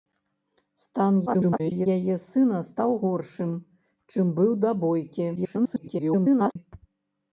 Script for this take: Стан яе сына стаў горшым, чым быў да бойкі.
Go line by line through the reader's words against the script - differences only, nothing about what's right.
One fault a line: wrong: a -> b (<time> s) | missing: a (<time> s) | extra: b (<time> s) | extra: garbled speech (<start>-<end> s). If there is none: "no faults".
extra: garbled speech (1.3-1.9 s)
extra: garbled speech (5.4-6.6 s)